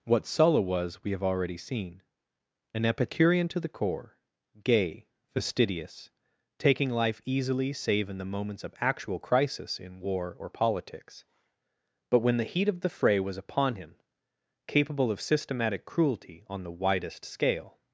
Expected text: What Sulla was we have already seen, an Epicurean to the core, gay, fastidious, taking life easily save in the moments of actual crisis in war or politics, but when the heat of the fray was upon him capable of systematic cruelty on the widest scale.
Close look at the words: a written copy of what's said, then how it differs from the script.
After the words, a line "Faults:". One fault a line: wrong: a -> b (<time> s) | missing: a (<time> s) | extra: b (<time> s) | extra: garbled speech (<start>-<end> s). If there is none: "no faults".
What Sulla was we have already seen, an Epicurean to the core, gay, fastidious, taking life easily save in the moments of actual crisis in war or politics, but when the heat of the fray was upon him capable of systematic cruelty on the widest scale.
Faults:
no faults